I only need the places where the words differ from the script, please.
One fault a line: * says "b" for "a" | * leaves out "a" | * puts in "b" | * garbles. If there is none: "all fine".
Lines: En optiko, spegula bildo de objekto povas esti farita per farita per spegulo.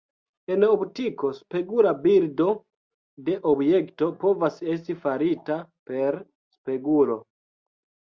* leaves out "farita per"